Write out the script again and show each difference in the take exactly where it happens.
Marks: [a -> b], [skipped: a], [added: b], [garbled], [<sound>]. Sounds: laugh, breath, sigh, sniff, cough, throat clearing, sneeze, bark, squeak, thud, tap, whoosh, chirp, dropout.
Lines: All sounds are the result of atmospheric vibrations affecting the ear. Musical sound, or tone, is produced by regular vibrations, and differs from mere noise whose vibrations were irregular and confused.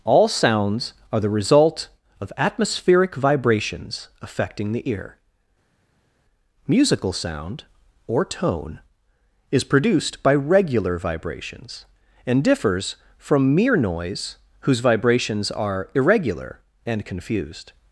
All sounds are the result of atmospheric vibrations affecting the ear. Musical sound, or tone, is produced by regular vibrations, and differs from mere noise whose vibrations [were -> are] irregular and confused.